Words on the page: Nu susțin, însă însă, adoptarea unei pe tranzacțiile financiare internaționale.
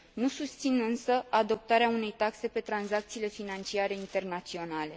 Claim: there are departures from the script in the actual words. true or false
true